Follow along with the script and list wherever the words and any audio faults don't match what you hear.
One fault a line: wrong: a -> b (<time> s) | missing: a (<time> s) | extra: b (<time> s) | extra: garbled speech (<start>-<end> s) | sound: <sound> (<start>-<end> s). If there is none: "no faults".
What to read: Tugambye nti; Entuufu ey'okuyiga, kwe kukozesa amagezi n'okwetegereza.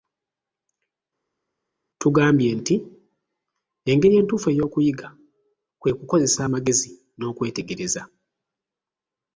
extra: Engeri (3.9 s)